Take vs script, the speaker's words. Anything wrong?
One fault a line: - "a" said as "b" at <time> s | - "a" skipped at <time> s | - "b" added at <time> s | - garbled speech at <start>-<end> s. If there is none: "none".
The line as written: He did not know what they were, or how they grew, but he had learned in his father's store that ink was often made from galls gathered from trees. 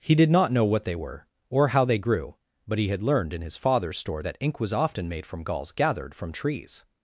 none